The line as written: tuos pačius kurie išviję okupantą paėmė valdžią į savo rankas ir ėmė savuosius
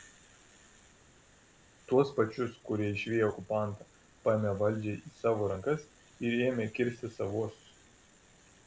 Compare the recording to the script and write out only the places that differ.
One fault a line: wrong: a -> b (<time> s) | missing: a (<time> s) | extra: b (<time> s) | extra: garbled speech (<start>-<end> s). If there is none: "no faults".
extra: kirsti (6.8 s)